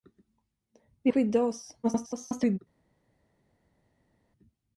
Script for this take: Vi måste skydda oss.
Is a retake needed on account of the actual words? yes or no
yes